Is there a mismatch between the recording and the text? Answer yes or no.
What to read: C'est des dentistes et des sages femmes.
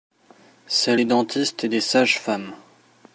no